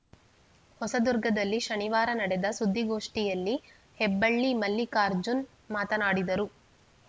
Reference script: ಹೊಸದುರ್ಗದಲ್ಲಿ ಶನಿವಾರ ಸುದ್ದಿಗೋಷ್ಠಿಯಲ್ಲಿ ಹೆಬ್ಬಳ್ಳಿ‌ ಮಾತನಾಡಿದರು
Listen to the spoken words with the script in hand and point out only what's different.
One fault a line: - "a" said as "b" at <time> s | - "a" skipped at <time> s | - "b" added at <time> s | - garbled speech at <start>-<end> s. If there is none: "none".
- "ನಡೆದ" added at 2.1 s
- "ಮಲ್ಲಿಕಾರ್ಜುನ್" added at 4.6 s